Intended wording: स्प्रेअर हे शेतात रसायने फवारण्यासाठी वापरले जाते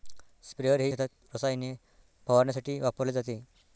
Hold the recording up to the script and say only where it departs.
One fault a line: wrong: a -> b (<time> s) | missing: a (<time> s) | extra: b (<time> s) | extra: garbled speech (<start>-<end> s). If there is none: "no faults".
no faults